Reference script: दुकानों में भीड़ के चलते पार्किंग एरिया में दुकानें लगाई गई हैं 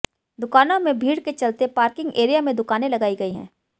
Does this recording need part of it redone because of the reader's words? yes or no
no